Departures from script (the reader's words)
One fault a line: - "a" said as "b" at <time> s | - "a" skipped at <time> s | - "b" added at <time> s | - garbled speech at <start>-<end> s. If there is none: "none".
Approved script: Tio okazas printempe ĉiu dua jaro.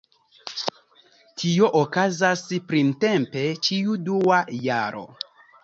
none